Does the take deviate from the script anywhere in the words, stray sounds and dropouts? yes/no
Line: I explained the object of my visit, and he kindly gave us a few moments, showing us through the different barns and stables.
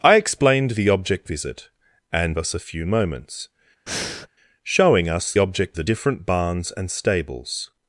yes